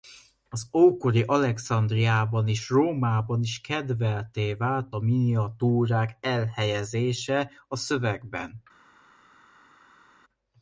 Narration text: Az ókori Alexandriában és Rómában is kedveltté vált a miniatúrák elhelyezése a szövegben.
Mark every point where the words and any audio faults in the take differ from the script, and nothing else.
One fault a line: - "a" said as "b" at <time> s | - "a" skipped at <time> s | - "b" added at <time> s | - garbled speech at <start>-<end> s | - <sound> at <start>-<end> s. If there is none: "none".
none